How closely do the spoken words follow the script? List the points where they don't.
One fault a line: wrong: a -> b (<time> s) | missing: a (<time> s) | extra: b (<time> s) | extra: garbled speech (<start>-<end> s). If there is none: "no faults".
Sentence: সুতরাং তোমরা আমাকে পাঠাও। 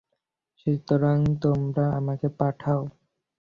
no faults